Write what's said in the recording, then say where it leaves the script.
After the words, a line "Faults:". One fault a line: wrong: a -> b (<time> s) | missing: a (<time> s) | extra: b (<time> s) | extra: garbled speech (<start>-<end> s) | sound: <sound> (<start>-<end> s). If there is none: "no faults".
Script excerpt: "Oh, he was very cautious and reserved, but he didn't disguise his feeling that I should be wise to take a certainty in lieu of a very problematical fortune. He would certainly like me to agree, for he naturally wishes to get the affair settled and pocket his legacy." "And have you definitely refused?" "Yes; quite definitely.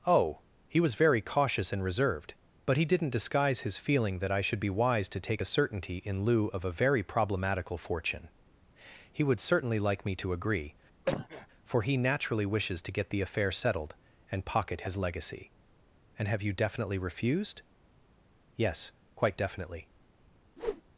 "Oh, he was very cautious and reserved, but he didn't disguise his feeling that I should be wise to take a certainty in lieu of a very problematical fortune. He would certainly like me to agree, for he naturally wishes to get the affair settled and pocket his legacy." "And have you definitely refused?" "Yes; quite definitely.
Faults:
sound: cough (11.1-11.5 s)
sound: whoosh (20.6-20.8 s)